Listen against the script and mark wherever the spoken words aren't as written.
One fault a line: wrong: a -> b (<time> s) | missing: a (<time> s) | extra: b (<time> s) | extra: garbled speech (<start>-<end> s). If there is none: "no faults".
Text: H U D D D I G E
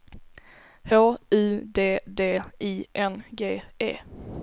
wrong: D I -> I N (2.6 s)